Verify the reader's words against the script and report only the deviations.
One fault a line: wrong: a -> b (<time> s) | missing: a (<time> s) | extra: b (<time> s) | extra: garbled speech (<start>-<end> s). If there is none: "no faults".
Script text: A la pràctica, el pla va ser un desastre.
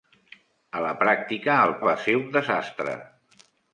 missing: pla (1.8 s)